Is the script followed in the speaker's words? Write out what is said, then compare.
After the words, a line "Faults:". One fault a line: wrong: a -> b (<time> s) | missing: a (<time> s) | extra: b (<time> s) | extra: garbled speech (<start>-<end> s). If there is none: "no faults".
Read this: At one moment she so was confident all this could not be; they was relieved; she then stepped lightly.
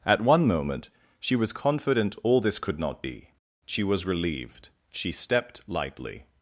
At one moment she was confident all this could not be; she was relieved; she stepped lightly.
Faults:
missing: so (1.4 s)
wrong: they -> she (3.6 s)
missing: then (5.1 s)